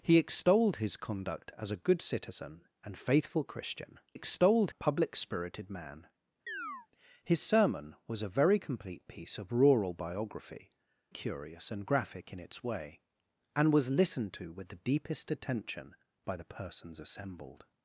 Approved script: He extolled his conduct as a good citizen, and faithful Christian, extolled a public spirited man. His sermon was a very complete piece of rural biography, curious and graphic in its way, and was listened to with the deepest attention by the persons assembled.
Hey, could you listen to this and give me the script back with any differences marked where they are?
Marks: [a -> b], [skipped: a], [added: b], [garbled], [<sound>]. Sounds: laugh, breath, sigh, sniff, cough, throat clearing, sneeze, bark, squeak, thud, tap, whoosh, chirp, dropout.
He extolled his conduct as a good citizen, and faithful Christian, extolled a public spirited man. [chirp] His sermon was a very complete piece of rural biography, curious and graphic in its way, and was listened to with the deepest attention by the persons assembled.